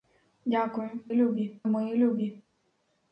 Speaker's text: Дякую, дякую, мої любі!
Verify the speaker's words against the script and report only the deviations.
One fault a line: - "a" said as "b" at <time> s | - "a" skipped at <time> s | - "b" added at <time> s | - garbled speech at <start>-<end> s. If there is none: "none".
- "дякую" said as "любі" at 1.1 s